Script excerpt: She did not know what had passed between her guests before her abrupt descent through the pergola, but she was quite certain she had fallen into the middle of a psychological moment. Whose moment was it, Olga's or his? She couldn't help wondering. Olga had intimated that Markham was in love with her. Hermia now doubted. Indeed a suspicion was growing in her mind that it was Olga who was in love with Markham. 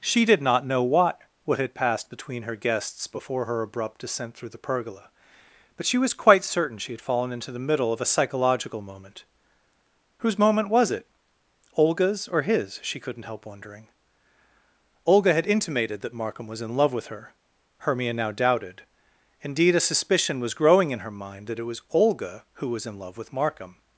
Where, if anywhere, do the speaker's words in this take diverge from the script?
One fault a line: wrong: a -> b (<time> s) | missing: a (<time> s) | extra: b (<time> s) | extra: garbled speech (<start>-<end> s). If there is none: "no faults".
extra: what (1.4 s)